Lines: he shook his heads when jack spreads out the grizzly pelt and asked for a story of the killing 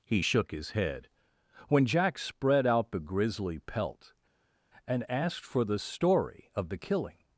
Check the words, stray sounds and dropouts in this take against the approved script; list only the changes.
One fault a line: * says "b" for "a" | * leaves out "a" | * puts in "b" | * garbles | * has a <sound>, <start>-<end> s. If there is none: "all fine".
* says "head" for "heads"
* says "spread" for "spreads"
* says "the" for "a"